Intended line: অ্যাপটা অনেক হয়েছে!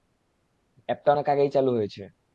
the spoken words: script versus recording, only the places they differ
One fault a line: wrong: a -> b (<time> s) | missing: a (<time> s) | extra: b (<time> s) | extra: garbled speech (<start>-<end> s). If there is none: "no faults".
extra: আগেই চালু (1.3 s)